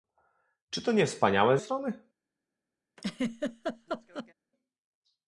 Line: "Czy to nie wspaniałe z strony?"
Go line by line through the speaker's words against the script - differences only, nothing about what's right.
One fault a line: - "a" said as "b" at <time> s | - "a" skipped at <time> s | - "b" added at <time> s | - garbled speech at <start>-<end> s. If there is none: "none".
none